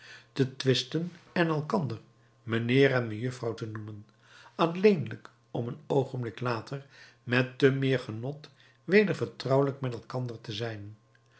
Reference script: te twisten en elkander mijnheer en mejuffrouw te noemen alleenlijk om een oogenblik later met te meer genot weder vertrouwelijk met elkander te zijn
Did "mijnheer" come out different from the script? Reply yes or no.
no